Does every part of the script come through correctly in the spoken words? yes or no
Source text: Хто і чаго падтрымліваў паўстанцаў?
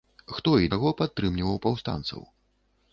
yes